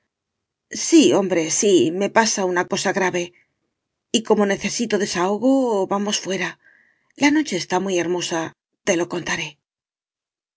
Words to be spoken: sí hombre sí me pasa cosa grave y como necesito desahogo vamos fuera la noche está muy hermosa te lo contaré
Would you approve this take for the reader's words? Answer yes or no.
no